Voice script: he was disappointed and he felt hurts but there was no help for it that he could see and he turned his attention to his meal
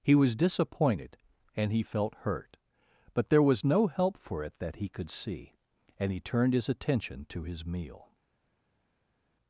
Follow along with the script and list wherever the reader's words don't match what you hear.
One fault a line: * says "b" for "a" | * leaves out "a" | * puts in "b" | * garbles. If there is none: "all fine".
* says "hurt" for "hurts"